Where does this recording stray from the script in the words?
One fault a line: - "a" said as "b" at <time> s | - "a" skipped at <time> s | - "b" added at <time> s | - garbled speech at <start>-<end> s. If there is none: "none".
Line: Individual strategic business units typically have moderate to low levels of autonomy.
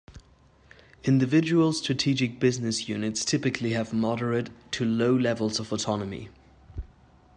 none